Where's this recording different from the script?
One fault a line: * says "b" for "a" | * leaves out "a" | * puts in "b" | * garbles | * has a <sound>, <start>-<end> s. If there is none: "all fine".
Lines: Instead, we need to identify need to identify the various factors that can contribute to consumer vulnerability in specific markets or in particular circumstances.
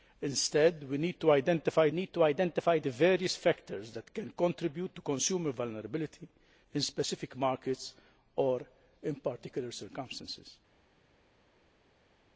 all fine